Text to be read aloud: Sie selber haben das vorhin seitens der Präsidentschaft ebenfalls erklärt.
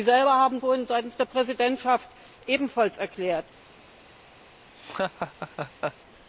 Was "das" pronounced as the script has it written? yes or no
no